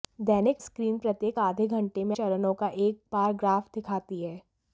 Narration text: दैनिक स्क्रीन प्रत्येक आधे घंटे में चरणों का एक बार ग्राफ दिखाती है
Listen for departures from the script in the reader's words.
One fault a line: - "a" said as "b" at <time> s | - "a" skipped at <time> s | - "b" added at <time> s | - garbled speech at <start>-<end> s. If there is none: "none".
none